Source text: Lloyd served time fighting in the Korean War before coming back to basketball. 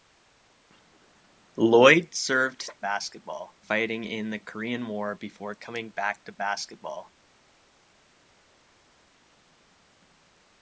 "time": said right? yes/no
no